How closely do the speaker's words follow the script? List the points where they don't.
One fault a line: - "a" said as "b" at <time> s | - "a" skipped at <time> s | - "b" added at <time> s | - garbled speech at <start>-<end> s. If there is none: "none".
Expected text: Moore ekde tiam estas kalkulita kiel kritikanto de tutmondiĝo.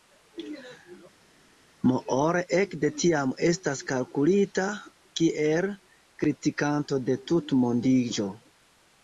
none